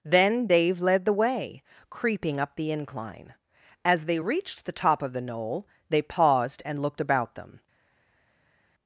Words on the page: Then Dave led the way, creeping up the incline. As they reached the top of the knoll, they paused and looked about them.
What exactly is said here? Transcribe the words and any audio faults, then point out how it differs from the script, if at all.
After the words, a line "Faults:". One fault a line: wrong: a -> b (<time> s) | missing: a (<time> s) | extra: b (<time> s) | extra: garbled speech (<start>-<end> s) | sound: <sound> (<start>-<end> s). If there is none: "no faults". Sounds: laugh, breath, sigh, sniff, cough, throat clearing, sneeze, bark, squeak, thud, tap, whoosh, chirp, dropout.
Then Dave led the way, creeping up the incline. As they reached the top of the knoll, they paused and looked about them.
Faults:
no faults